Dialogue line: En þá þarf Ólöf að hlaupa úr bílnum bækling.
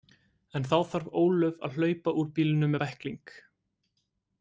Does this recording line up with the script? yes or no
yes